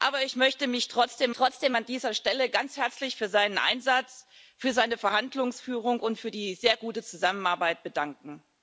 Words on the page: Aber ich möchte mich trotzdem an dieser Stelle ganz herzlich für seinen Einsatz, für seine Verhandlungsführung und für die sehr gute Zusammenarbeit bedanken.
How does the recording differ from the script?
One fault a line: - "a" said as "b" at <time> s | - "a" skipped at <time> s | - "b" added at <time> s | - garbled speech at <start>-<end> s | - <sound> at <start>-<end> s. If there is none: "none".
- "trotzdem" added at 1.3 s